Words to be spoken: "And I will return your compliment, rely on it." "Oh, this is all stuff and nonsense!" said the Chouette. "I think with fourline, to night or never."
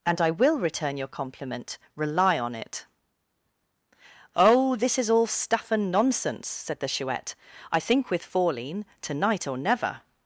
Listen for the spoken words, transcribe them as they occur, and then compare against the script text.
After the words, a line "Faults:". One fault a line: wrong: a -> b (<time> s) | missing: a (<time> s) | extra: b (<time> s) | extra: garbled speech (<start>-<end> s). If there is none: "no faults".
"And I will return your compliment, rely on it." "Oh, this is all stuff and nonsense!" said the Chouette. "I think with fourline, to night or never."
Faults:
no faults